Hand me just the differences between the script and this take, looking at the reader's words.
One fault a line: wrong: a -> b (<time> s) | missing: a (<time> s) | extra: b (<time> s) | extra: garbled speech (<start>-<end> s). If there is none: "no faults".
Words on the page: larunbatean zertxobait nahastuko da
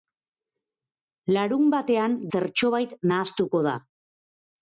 no faults